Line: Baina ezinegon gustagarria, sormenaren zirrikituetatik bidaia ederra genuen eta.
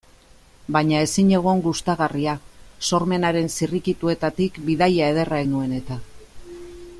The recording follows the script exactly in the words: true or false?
true